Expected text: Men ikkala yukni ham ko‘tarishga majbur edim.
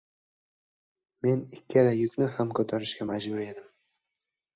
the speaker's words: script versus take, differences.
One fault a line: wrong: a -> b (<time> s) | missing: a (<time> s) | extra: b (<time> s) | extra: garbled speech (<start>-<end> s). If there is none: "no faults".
no faults